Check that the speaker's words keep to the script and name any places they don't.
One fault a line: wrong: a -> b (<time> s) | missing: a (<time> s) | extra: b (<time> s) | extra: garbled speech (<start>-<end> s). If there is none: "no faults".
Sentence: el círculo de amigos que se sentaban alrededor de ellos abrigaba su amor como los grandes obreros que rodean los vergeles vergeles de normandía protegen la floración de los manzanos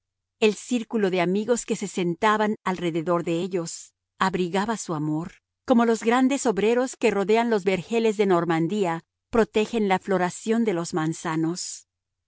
missing: vergeles (8.2 s)